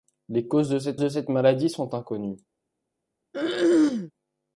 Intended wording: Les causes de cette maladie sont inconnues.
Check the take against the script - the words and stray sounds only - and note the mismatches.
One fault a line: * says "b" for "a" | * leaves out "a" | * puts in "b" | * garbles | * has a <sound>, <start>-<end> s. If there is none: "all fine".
* puts in "de cette"
* has a throat clearing, 3.3-4.1 s